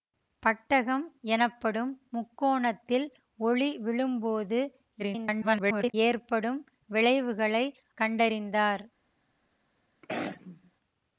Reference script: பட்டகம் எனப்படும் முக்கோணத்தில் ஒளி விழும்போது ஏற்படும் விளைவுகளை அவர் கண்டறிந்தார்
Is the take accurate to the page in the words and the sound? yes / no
no